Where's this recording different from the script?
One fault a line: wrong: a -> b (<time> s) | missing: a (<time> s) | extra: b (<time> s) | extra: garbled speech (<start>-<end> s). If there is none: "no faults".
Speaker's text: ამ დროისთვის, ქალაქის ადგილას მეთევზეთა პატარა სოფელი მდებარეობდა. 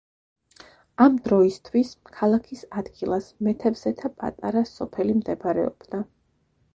no faults